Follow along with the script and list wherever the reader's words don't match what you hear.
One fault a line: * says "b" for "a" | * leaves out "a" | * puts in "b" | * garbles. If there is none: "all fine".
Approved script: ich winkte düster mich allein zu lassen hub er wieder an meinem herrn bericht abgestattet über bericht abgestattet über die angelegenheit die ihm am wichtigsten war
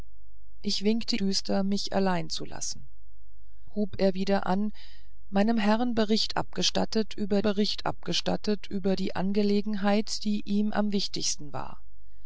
all fine